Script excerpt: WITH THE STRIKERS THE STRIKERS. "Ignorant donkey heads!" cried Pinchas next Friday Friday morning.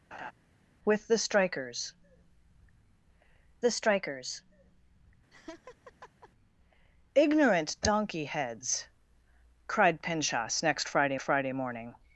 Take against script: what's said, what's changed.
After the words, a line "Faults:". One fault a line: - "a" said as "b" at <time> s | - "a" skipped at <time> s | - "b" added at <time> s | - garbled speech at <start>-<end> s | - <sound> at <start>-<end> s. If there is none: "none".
WITH THE STRIKERS THE STRIKERS. "Ignorant donkey heads!" cried Pinchas next Friday Friday morning.
Faults:
- laugh at 0.1-0.3 s
- laugh at 5.3-6.3 s